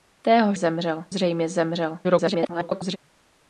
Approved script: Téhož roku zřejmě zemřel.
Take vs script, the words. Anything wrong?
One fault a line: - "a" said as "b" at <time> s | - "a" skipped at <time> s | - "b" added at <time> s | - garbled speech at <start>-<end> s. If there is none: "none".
- "roku" said as "zemřel" at 0.5 s
- garbled speech at 2.0-3.0 s